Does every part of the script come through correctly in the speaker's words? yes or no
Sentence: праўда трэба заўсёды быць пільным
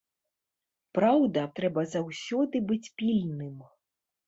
yes